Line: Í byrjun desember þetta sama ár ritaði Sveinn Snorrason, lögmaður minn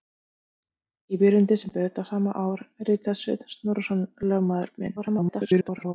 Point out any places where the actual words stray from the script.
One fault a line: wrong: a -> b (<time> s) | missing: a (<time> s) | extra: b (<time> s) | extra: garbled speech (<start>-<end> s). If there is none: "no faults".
extra: garbled speech (5.0-5.9 s)